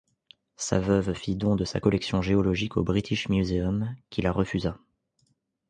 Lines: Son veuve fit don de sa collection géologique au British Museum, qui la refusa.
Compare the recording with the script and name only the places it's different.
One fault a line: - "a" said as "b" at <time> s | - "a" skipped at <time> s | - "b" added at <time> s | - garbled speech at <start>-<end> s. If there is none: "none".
- "Son" said as "Sa" at 0.6 s